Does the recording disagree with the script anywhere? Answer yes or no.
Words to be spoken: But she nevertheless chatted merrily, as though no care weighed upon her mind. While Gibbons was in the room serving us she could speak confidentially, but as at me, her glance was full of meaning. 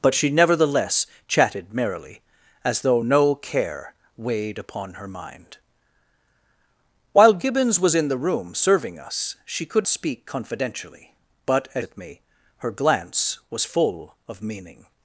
no